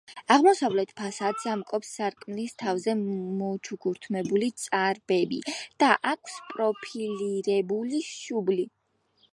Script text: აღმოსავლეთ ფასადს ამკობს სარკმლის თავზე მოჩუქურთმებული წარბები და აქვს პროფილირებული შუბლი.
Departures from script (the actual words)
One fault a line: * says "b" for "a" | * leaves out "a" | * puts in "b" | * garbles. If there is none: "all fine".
all fine